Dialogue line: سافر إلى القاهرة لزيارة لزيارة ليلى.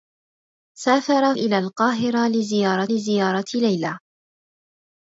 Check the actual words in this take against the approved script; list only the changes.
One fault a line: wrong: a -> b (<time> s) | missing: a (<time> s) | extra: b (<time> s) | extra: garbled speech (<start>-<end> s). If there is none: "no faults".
no faults